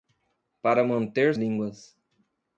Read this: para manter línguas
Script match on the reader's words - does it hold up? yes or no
yes